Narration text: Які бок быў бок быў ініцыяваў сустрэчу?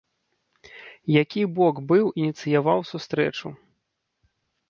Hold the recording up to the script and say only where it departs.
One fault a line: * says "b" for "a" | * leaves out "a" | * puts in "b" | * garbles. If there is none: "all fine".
* leaves out "бок быў"